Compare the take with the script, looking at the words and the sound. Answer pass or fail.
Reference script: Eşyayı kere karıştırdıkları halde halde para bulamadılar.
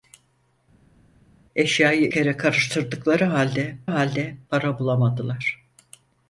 pass